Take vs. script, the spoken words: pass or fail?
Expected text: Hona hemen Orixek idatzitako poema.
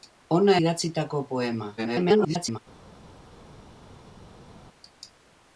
fail